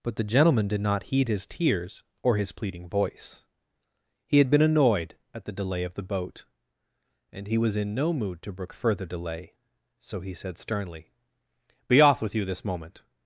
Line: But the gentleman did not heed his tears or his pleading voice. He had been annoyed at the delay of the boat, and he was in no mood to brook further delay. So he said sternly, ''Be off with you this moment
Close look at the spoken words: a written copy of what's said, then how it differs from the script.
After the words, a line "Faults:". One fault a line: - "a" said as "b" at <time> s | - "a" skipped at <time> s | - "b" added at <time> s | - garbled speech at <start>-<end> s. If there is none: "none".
But the gentleman did not heed his tears or his pleading voice. He had been annoyed at the delay of the boat, and he was in no mood to brook further delay. So he said sternly, ''Be off with you this moment
Faults:
none